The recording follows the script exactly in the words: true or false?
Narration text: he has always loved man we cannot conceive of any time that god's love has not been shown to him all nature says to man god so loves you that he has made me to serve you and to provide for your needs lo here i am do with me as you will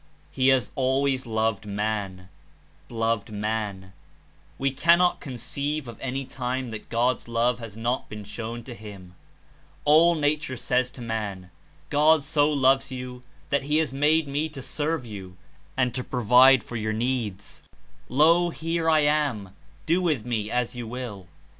false